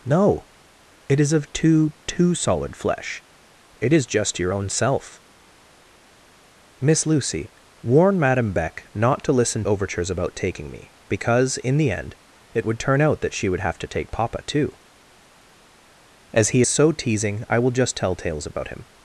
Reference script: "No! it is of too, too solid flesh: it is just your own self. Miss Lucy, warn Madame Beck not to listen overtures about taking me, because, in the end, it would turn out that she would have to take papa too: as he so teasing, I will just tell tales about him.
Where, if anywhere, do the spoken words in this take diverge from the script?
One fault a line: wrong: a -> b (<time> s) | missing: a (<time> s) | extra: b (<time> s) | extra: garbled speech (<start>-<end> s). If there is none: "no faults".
no faults